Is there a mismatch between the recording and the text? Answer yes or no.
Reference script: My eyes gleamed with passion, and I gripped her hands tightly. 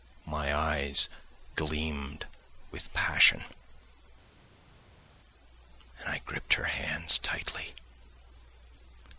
no